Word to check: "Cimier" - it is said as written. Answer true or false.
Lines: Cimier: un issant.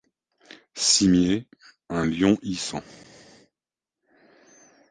true